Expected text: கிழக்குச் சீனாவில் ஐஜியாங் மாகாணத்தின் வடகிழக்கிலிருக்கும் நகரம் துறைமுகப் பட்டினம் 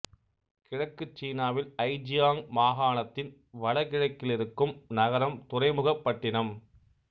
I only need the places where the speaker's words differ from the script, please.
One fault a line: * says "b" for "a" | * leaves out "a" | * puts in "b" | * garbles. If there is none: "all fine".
all fine